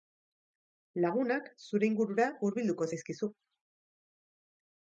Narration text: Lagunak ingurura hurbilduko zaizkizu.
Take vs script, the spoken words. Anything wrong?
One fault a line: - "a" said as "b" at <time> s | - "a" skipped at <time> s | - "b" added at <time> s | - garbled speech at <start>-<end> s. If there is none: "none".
- "zure" added at 1.7 s